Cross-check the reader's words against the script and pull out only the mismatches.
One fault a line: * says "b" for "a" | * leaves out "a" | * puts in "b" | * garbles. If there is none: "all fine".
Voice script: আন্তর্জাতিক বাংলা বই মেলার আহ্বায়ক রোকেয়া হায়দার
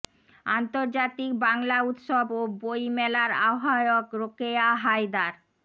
* puts in "উৎসব ও"